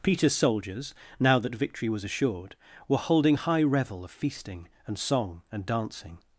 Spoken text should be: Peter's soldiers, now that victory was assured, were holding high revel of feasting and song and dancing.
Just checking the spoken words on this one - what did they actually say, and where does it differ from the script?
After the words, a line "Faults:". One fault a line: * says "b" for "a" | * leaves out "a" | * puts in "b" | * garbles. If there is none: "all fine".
Peter's soldiers, now that victory was assured, were holding high revel of feasting and song and dancing.
Faults:
all fine